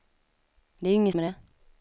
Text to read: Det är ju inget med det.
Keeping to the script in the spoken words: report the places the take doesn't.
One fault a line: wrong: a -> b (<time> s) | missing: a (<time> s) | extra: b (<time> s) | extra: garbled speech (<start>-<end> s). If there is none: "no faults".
no faults